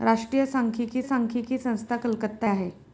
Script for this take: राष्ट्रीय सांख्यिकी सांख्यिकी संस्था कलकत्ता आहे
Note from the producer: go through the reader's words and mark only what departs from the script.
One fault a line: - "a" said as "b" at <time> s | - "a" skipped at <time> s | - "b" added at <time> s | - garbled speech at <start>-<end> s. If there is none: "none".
none